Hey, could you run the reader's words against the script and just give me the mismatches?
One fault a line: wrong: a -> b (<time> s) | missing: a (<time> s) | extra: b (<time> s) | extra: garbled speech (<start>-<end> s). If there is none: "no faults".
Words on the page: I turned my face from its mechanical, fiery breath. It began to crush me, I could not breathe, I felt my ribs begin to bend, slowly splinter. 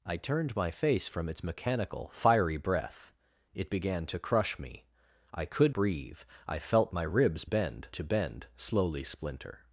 missing: not (5.8 s)
wrong: begin -> bend (7.4 s)